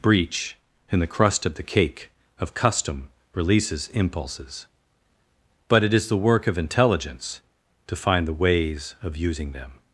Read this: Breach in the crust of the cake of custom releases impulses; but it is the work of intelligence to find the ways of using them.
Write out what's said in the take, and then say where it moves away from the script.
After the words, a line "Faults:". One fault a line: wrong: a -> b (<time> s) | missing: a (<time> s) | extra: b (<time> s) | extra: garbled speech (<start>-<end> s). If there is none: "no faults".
Breach in the crust of the cake of custom releases impulses; but it is the work of intelligence to find the ways of using them.
Faults:
no faults